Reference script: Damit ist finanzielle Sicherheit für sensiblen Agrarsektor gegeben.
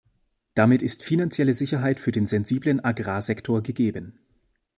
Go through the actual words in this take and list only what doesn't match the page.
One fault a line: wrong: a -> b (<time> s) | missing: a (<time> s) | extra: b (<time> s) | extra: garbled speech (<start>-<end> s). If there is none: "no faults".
extra: den (2.1 s)